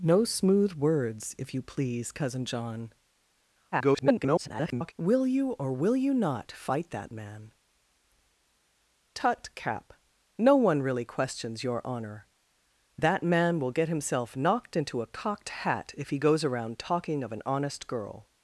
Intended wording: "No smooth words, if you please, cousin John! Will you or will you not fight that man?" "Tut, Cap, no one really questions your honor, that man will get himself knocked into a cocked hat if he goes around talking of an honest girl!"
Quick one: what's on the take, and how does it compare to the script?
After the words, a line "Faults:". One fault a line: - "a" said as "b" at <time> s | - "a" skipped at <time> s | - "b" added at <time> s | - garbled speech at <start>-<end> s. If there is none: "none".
"No smooth words, if you please, cousin John! [garbled] Will you or will you not fight that man?" "Tut, Cap, no one really questions your honor, that man will get himself knocked into a cocked hat if he goes around talking of an honest girl!"
Faults:
- garbled speech at 3.7-4.9 s